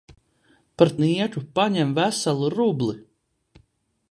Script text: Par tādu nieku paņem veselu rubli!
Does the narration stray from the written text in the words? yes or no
yes